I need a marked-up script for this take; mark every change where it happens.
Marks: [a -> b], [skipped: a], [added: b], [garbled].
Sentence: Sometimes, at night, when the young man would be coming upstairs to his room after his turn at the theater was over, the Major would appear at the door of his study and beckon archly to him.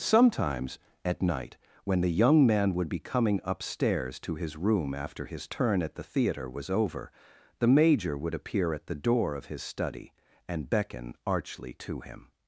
Sometimes, at night, when the young man would be coming upstairs to his room after his turn at the theater was over, the Major would appear at the door of his study and beckon archly to him.